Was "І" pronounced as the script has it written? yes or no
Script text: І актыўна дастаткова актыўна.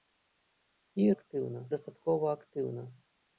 yes